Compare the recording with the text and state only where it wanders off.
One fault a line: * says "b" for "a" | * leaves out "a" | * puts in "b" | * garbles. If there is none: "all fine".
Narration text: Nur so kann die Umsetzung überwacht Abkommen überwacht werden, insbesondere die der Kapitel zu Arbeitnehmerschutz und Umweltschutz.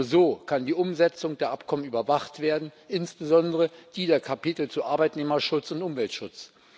* says "der" for "überwacht"